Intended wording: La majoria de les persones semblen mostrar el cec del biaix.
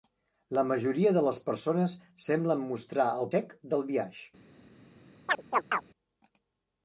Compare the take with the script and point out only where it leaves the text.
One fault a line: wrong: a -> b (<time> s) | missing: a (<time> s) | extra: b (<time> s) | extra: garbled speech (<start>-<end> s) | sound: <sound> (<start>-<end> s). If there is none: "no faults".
sound: chirp (5.3-5.8 s)